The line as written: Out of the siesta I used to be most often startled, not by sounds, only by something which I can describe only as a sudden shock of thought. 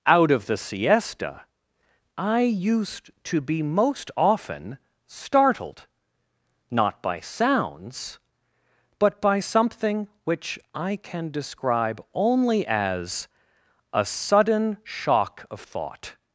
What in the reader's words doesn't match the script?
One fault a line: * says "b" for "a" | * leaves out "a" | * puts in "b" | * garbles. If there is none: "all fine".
* says "but" for "only"